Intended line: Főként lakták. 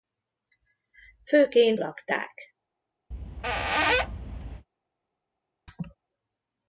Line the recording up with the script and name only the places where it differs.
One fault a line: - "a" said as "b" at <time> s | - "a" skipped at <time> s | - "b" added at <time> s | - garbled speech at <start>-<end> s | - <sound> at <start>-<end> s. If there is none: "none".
- squeak at 3.1-4.7 s
- laugh at 5.7-6.0 s